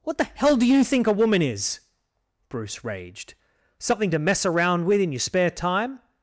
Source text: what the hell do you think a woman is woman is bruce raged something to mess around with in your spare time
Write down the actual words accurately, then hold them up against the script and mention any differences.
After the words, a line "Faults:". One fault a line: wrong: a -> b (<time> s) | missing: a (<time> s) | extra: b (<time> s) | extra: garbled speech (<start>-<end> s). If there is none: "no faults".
what the hell do you think a woman is bruce raged something to mess around with in your spare time
Faults:
missing: woman is (1.8 s)